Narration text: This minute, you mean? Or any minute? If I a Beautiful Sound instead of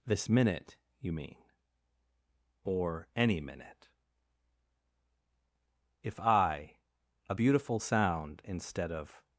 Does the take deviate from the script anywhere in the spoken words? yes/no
no